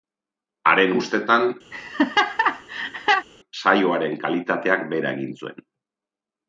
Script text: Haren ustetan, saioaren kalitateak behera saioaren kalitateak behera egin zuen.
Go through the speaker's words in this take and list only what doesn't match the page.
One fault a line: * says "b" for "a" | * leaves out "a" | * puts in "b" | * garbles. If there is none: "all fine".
* leaves out "saioaren kalitateak behera"